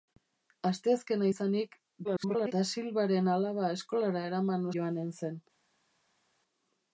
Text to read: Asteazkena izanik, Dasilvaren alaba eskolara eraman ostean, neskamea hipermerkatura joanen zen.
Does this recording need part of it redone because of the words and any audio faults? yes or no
yes